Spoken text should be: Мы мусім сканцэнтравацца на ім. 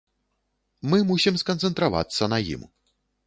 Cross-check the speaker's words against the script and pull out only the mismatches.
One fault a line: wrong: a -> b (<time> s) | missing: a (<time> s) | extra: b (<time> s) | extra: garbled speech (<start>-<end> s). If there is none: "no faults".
no faults